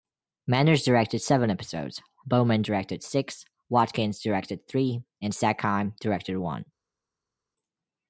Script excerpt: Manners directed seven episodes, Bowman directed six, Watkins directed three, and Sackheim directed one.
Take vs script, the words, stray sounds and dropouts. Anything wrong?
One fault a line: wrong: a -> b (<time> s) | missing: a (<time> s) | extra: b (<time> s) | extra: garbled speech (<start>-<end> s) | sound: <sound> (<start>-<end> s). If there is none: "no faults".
no faults